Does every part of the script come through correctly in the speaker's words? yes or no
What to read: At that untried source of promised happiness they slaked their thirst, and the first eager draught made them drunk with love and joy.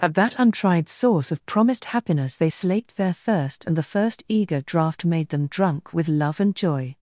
yes